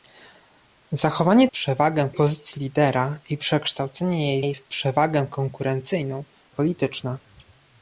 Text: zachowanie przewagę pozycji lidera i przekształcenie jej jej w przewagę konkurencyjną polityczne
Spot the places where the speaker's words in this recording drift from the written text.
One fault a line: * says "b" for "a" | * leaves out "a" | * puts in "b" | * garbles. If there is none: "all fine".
all fine